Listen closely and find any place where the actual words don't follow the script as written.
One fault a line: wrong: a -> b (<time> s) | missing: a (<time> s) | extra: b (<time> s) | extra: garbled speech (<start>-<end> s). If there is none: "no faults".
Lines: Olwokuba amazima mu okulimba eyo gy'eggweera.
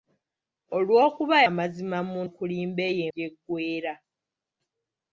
no faults